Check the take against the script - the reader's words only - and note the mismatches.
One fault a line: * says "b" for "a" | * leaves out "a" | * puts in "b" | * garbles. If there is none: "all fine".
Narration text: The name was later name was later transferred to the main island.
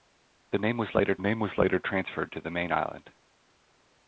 all fine